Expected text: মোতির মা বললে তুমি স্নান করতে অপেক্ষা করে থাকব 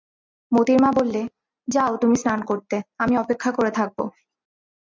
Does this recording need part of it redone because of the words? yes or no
yes